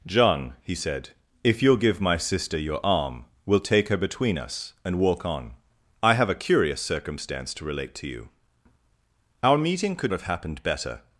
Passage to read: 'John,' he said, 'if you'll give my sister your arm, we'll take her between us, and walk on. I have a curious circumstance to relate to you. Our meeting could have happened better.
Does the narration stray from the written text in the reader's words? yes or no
no